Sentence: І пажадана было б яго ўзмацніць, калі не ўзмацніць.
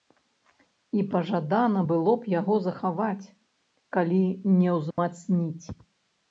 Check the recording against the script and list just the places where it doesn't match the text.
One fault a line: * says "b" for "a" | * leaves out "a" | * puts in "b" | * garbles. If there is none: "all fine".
* says "захаваць" for "ўзмацніць"